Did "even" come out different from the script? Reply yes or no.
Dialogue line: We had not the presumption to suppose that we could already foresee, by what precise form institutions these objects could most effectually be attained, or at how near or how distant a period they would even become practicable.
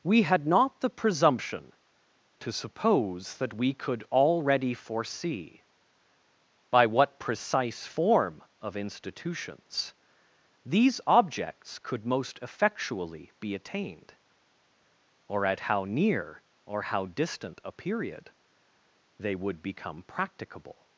yes